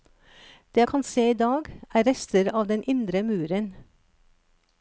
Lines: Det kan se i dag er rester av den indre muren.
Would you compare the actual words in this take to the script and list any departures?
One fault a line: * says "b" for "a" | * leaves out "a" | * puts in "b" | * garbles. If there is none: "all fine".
all fine